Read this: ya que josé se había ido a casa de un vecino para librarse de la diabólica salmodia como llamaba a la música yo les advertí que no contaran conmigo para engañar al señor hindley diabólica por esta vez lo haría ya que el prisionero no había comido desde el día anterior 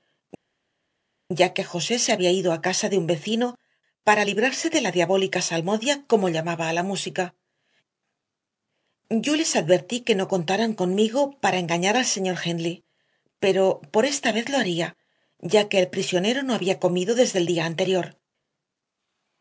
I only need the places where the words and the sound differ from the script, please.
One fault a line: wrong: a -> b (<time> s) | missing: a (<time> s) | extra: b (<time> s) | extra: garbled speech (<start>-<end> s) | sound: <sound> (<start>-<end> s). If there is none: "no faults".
wrong: diabólica -> pero (13.4 s)